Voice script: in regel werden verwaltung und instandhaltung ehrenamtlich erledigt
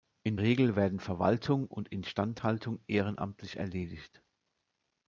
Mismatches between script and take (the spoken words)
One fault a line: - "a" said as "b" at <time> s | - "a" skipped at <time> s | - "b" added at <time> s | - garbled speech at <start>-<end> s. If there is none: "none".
none